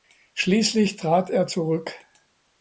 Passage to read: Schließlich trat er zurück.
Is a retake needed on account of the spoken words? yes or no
no